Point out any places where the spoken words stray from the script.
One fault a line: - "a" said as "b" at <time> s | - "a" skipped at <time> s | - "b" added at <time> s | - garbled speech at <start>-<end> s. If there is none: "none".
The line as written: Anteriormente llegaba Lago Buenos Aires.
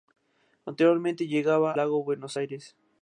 none